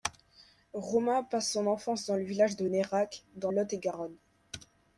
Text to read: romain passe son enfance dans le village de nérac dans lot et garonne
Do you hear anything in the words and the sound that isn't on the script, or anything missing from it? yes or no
no